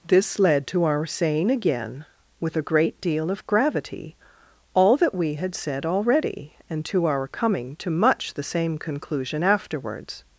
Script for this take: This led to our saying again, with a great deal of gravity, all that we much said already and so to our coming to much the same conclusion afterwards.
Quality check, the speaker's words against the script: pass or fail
fail